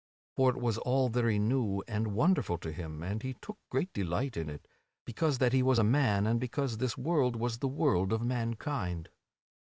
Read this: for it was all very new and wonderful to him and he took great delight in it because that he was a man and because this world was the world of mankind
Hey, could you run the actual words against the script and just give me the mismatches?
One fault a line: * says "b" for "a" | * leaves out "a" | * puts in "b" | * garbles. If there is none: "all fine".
all fine